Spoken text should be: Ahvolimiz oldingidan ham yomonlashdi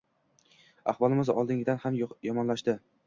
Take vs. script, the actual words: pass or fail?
pass